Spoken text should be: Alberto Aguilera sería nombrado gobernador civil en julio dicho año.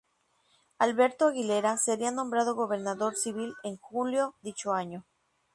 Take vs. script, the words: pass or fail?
pass